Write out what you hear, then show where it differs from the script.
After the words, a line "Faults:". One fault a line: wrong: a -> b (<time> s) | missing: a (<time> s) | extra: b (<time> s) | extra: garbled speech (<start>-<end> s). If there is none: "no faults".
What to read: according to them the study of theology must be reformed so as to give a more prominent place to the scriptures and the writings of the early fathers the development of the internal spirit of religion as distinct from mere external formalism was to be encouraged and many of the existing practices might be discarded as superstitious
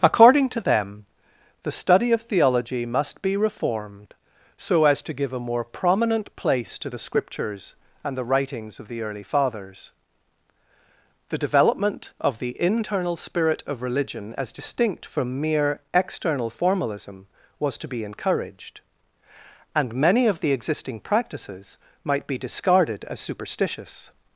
according to them the study of theology must be reformed so as to give a more prominent place to the scriptures and the writings of the early fathers the development of the internal spirit of religion as distinct from mere external formalism was to be encouraged and many of the existing practices might be discarded as superstitious
Faults:
no faults